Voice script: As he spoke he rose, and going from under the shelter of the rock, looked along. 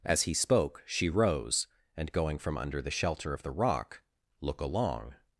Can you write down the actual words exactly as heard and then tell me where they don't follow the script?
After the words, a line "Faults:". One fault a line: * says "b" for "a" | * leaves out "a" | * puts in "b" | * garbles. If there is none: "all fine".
As he spoke she rose, and going from under the shelter of the rock, look along.
Faults:
* says "she" for "he"
* says "look" for "looked"